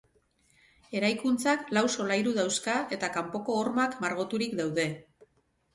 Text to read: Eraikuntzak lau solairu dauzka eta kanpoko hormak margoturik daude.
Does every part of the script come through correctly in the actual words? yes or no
yes